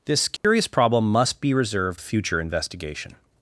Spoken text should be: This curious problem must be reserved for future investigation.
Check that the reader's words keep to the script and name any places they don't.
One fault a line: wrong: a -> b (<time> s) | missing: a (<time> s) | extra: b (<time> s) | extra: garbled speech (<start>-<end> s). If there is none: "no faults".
missing: for (2.0 s)